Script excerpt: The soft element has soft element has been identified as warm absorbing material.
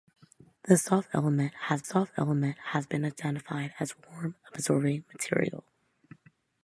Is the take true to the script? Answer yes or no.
yes